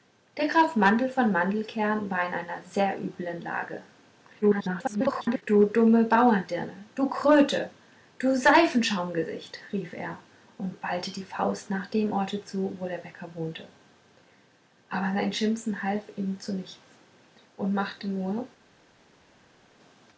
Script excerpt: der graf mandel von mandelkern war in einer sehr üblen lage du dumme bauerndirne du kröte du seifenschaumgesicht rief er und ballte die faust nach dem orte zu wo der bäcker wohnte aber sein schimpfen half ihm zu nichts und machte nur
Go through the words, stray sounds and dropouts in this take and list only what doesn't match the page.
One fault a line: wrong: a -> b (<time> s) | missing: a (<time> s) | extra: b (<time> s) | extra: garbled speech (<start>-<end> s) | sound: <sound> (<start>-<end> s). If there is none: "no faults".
extra: garbled speech (4.4-5.4 s)